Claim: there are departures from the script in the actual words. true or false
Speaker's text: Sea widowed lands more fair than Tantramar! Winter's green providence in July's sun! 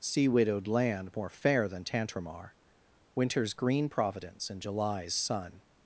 true